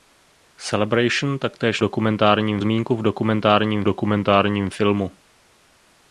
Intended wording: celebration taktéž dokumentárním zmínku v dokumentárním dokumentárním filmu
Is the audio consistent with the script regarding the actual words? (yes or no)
yes